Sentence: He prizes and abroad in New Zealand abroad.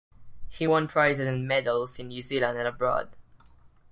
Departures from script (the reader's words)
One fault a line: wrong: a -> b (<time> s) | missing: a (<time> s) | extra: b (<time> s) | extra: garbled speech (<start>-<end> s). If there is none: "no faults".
extra: won (0.6 s)
wrong: abroad -> medals (1.5 s)
extra: and (2.6 s)